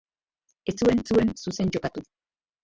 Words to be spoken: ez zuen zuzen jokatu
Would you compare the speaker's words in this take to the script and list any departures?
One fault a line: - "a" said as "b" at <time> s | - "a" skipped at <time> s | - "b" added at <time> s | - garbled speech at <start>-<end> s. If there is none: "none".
- "zuen" added at 1.1 s